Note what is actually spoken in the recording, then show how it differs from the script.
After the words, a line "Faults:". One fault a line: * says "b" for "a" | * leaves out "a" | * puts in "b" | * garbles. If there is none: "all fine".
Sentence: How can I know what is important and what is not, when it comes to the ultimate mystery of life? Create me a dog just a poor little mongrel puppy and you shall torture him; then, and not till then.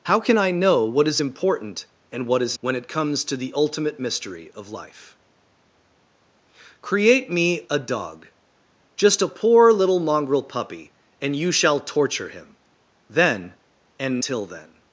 How can I know what is important and what is when it comes to the ultimate mystery of life? Create me a dog just a poor little mongrel puppy and you shall torture him; then, and till then.
Faults:
* leaves out "not"
* leaves out "not"